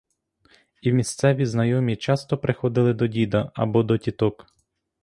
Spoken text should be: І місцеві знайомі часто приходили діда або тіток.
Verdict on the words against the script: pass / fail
fail